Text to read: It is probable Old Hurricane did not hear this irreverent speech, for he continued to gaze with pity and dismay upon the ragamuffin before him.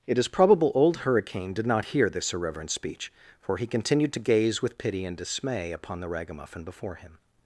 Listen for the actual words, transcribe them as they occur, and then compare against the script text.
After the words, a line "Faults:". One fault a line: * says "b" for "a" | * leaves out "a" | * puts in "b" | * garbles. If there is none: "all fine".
It is probable Old Hurricane did not hear this irreverent speech, for he continued to gaze with pity and dismay upon the ragamuffin before him.
Faults:
all fine